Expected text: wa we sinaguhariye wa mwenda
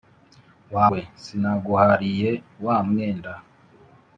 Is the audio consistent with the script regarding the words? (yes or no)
yes